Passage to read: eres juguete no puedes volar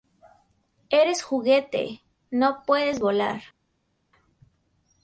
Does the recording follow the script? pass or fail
pass